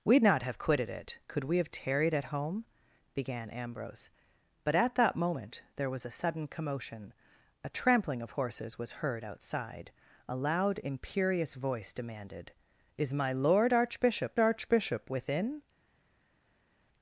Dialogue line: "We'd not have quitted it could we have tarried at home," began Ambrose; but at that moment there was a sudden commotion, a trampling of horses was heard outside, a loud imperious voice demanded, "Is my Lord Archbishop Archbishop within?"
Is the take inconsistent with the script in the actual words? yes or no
no